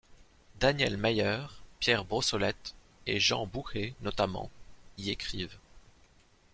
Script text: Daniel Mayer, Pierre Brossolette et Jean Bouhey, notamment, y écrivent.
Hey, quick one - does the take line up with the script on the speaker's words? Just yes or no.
yes